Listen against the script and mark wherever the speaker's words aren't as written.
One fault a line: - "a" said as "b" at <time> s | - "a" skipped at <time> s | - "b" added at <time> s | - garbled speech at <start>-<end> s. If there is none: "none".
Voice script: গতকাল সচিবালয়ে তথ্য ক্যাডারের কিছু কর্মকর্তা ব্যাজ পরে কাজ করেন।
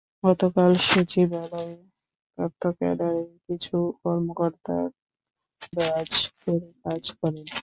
none